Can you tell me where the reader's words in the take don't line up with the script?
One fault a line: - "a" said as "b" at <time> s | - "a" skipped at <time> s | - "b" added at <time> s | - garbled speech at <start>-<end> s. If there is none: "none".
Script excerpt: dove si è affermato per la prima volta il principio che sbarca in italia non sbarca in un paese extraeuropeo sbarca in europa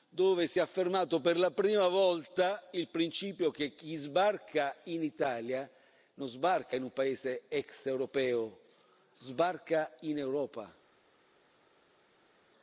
- "chi" added at 3.7 s